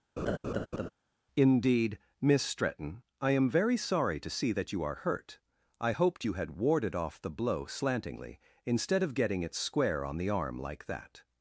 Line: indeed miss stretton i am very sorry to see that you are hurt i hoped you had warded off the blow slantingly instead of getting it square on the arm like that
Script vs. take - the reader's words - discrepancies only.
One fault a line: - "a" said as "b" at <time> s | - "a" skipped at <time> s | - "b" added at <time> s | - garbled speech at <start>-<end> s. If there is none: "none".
none